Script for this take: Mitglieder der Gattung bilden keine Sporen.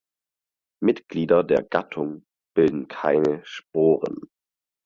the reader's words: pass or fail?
pass